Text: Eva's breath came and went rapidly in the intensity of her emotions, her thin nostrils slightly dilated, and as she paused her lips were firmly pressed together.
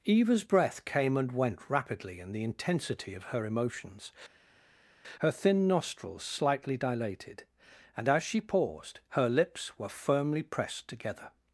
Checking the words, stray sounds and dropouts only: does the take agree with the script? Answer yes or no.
yes